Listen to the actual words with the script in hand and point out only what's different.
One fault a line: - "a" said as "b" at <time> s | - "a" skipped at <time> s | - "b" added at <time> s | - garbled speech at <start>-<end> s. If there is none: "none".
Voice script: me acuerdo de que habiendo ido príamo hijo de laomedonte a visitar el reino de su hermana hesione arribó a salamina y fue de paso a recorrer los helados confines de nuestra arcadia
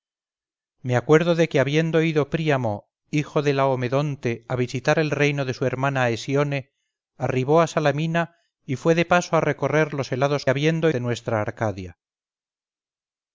- "confines" said as "habiendo" at 10.5 s